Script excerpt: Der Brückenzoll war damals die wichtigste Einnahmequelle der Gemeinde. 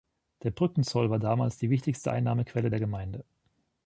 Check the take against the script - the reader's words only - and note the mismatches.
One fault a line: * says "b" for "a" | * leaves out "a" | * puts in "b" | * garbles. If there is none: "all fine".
all fine